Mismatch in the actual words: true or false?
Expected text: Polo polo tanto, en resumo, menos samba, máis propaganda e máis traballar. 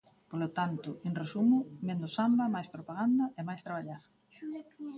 true